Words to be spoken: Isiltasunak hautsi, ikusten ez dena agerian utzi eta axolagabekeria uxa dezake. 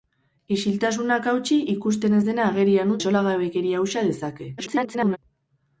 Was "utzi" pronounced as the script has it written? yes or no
no